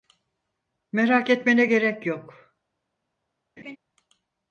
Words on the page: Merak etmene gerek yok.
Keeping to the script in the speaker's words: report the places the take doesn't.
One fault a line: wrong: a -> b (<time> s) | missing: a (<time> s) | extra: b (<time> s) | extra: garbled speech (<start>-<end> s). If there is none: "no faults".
no faults